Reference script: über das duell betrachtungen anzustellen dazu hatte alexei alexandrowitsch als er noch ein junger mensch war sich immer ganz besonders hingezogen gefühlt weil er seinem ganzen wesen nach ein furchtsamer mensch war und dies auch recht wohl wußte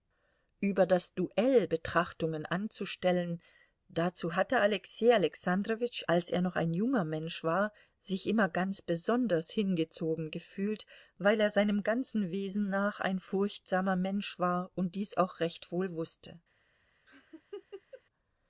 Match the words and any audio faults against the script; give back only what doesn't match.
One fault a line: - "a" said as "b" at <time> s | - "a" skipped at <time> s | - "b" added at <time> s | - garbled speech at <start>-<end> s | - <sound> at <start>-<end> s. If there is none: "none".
- laugh at 17.1-18.0 s